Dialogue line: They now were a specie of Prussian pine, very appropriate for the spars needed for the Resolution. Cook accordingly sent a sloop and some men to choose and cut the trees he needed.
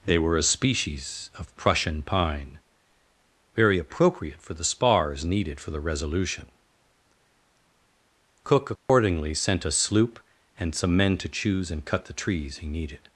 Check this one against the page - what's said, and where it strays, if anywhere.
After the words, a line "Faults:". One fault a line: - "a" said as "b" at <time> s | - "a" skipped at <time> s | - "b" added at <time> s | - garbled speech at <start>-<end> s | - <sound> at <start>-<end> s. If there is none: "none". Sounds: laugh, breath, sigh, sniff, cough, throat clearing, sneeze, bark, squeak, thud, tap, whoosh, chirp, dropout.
They were a species of Prussian pine, very appropriate for the spars needed for the Resolution. Cook accordingly sent a sloop and some men to choose and cut the trees he needed.
Faults:
- "now" skipped at 0.2 s
- "specie" said as "species" at 0.4 s
- dropout at 8.8-8.9 s